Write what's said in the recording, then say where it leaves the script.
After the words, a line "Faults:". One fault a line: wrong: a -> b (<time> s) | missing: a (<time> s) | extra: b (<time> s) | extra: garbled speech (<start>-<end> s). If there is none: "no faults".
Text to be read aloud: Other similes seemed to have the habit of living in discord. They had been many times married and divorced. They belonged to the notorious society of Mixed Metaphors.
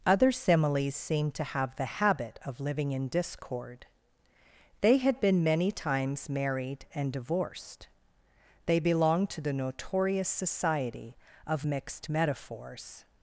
Other similes seemed to have the habit of living in discord. They had been many times married and divorced. They belonged to the notorious society of Mixed Metaphors.
Faults:
no faults